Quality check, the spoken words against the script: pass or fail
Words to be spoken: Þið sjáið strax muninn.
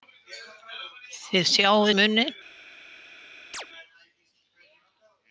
fail